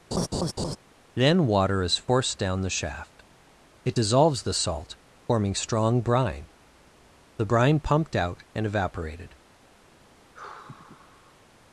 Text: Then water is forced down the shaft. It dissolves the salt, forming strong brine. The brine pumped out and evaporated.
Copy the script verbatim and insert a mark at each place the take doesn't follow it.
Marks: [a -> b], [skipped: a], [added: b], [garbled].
Then water is forced down the shaft. It dissolves the salt, forming strong brine. The brine pumped out and evaporated.